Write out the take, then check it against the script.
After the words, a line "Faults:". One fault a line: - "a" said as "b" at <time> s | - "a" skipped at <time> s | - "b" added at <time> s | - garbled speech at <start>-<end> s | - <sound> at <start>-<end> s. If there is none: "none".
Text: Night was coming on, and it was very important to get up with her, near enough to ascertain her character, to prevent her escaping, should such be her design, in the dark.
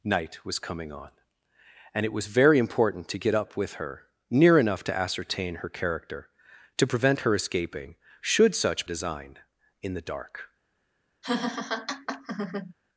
Night was coming on, and it was very important to get up with her, near enough to ascertain her character, to prevent her escaping, should such design, in the dark.
Faults:
- "be her" skipped at 8.9 s
- laugh at 11.2-12.7 s